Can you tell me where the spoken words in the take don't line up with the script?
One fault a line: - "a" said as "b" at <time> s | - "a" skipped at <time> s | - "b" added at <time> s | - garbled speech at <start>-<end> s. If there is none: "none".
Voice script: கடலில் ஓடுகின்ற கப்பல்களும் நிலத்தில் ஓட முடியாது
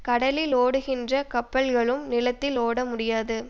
none